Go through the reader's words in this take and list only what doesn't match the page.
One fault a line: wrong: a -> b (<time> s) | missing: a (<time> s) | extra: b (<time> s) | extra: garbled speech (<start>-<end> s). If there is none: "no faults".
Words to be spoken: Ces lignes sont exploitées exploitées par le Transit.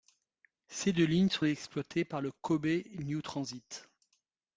extra: deux (0.9 s)
missing: exploitées (2.0 s)
extra: Kobe New (2.3 s)